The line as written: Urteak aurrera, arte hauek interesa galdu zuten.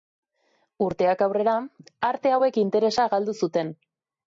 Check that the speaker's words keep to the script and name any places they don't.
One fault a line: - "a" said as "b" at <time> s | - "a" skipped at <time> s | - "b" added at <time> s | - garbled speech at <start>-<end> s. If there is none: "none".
none